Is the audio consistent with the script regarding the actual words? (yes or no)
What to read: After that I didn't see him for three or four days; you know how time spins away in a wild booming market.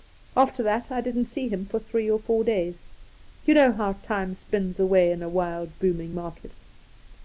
yes